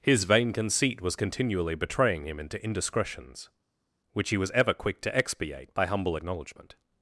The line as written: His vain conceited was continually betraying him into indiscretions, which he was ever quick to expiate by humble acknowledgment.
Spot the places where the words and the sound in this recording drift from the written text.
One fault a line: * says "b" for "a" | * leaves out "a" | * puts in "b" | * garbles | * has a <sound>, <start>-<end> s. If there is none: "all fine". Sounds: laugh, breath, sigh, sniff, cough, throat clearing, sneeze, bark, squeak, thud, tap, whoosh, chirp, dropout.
* says "conceit" for "conceited"